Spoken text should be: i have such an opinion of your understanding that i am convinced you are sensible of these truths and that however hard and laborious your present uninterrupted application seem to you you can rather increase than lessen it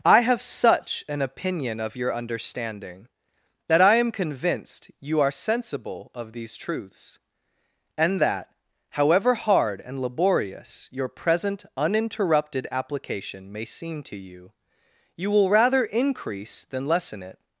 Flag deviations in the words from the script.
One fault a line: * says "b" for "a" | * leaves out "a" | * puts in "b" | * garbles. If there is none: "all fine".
* puts in "may"
* says "will" for "can"